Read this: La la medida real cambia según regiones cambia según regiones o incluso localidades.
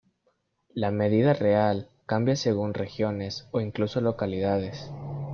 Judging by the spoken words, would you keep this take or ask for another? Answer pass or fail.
fail